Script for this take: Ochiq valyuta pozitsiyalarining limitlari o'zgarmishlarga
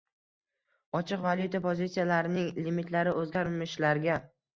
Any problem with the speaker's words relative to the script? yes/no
no